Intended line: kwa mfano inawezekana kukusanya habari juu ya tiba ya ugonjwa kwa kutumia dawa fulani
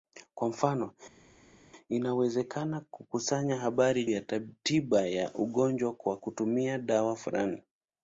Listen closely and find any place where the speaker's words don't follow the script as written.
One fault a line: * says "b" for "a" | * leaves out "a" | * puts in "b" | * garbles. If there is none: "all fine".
* leaves out "juu"